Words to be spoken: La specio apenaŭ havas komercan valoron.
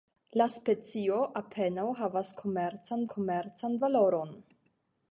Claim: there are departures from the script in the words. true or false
true